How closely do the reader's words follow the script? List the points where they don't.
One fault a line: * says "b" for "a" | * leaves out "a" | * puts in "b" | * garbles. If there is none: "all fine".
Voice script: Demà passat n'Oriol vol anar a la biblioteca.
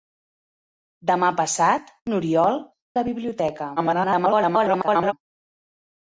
* leaves out "vol anar a"
* garbles